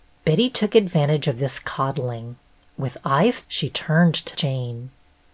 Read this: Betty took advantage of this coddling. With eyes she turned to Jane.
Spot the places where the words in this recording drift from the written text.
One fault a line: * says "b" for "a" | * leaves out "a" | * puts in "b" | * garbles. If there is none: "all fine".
all fine